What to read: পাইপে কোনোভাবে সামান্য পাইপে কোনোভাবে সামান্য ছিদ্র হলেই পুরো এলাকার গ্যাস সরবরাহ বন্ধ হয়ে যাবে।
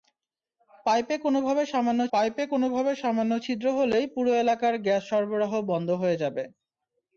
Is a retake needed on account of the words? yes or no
no